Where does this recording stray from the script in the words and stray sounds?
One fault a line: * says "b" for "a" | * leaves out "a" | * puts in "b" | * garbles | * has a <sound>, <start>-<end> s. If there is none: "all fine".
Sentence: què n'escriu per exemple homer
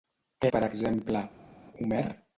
* leaves out "n'escriu"